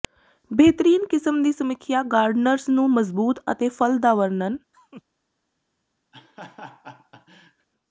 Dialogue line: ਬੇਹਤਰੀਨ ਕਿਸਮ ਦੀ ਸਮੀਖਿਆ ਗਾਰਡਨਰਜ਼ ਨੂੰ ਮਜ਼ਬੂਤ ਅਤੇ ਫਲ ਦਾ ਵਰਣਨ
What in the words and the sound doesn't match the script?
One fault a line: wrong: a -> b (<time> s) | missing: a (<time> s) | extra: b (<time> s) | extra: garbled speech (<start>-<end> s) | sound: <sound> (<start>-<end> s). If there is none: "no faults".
sound: laugh (4.7-5.0 s)
sound: laugh (6.1-7.7 s)